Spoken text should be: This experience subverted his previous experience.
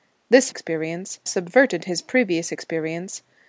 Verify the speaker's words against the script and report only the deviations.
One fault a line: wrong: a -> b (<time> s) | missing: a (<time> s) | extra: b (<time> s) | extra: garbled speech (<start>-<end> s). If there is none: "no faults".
no faults